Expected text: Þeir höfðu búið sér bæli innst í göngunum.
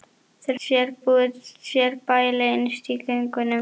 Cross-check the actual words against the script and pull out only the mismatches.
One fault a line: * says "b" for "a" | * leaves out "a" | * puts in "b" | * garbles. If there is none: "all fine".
* says "sér" for "höfðu"